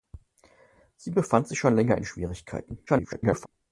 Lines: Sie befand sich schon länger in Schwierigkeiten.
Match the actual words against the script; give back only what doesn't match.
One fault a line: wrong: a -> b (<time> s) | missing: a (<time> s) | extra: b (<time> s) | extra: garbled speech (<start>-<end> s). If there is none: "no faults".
extra: garbled speech (2.9-3.5 s)